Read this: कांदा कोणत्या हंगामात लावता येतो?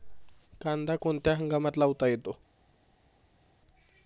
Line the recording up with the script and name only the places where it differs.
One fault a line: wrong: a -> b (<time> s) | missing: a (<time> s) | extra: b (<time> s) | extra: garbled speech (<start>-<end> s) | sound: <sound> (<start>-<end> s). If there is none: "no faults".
no faults